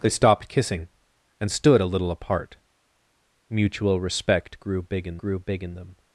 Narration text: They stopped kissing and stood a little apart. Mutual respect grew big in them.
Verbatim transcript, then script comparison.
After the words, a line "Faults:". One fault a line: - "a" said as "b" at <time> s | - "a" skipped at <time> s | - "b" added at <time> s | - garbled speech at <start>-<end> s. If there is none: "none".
They stopped kissing and stood a little apart. Mutual respect grew big in grew big in them.
Faults:
- "grew big in" added at 5.2 s